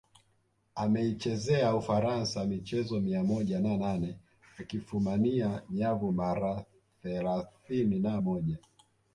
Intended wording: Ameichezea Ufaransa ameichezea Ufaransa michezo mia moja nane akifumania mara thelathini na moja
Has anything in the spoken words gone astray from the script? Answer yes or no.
yes